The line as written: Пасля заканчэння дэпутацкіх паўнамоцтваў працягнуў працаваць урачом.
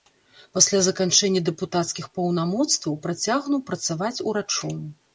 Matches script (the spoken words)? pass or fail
pass